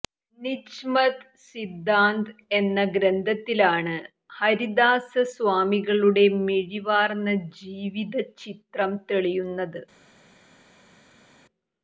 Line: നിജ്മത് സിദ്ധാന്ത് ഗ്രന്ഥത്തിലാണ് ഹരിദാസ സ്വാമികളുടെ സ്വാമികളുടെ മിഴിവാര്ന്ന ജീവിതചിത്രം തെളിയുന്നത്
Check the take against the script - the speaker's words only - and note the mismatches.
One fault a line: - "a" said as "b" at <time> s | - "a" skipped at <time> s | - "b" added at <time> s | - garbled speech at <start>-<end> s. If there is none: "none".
- "എന്ന" added at 2.5 s
- "സ്വാമികളുടെ" skipped at 6.2 s